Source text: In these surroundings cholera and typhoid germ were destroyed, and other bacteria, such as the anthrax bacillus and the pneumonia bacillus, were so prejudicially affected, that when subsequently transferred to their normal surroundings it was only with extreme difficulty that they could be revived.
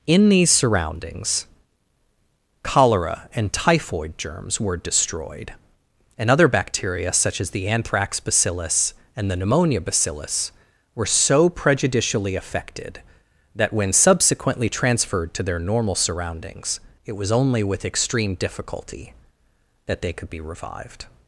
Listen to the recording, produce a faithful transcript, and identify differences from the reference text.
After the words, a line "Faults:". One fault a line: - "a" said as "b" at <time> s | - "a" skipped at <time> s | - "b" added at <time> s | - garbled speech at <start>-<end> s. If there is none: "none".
In these surroundings cholera and typhoid germs were destroyed, and other bacteria, such as the anthrax bacillus and the pneumonia bacillus, were so prejudicially affected, that when subsequently transferred to their normal surroundings it was only with extreme difficulty that they could be revived.
Faults:
- "germ" said as "germs" at 4.2 s